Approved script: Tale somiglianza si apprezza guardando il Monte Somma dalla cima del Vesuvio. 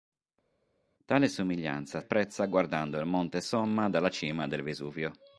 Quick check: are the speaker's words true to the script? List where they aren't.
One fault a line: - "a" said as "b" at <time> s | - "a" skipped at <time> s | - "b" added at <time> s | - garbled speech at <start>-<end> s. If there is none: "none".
- "si" skipped at 2.0 s